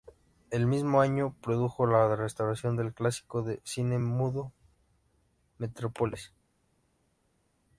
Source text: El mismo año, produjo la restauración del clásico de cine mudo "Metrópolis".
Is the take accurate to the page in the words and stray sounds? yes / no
yes